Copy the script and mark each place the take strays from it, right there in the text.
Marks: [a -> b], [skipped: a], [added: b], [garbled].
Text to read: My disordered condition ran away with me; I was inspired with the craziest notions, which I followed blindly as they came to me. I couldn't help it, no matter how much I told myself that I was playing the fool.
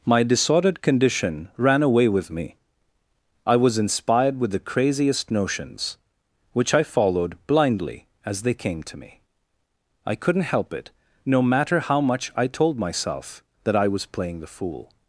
My disordered condition ran away with me; I was inspired with the craziest notions, which I followed blindly as they came to me. I couldn't help it, no matter how much I told myself that I was playing the fool.